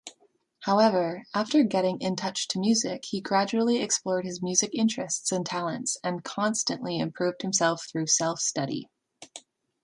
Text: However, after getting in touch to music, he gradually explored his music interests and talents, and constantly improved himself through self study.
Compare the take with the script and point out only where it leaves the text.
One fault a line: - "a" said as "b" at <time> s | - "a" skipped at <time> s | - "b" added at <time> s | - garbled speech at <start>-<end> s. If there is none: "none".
none